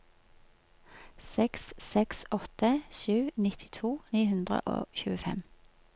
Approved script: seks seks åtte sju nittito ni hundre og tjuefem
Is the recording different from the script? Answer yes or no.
no